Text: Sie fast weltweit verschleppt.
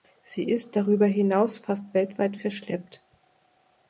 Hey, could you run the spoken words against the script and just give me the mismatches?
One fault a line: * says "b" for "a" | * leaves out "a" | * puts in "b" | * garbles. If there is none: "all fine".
* puts in "ist darüber hinaus"